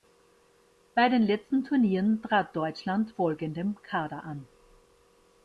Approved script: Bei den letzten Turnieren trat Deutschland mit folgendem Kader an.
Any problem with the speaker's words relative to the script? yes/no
yes